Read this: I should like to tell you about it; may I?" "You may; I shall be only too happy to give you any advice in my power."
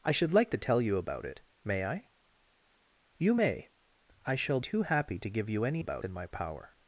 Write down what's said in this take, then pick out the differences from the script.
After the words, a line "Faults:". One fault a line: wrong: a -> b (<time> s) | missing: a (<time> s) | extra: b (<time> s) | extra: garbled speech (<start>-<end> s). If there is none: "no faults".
I should like to tell you about it; may I?" "You may; I shall too happy to give you any about in my power."
Faults:
missing: be only (4.6 s)
wrong: advice -> about (5.8 s)